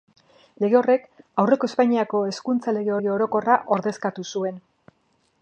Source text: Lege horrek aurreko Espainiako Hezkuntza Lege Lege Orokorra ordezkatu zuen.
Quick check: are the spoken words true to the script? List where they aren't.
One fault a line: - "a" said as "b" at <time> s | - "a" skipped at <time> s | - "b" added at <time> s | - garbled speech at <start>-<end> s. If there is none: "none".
none